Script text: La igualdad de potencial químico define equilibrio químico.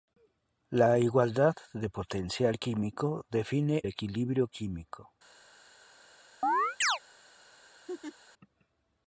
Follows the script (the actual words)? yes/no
yes